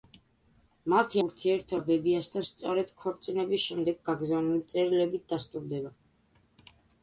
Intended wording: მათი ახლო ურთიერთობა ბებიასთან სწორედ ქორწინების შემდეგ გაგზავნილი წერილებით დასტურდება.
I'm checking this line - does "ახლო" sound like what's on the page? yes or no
no